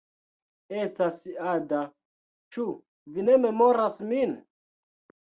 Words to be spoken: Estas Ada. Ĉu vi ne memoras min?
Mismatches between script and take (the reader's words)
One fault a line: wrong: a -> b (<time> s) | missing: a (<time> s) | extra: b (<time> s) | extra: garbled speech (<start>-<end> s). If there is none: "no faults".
no faults